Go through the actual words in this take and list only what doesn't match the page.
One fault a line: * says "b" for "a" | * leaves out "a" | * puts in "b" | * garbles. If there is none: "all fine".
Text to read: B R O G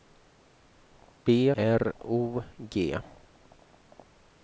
all fine